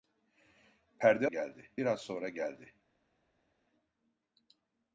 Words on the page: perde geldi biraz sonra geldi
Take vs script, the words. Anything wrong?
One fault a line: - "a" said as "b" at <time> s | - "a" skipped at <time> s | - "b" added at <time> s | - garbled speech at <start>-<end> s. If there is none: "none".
none